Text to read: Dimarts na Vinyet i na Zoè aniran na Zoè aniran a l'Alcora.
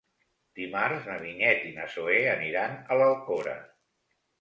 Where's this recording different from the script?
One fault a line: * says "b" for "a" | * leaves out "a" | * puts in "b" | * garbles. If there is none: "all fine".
* leaves out "na Zoè aniran"